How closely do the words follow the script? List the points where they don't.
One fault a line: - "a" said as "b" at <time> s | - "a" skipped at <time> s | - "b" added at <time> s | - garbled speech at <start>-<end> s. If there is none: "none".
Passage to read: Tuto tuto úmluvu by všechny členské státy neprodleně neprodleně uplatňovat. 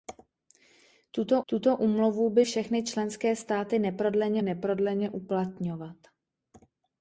none